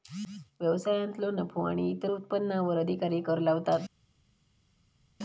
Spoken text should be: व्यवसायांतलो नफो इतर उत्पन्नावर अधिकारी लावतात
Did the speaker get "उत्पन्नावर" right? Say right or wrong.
right